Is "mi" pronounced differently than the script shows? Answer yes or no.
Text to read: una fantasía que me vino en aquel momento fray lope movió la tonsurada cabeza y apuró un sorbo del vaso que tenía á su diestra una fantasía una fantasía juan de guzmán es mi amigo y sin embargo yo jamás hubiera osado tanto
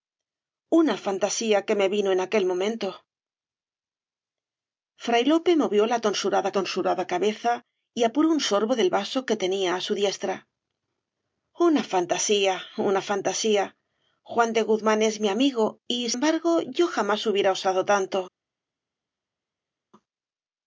no